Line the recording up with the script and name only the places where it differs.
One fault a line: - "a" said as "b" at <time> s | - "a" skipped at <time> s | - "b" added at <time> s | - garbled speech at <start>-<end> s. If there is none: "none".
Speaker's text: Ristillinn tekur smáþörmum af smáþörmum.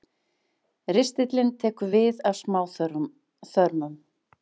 - "smáþörmum" said as "við" at 2.0 s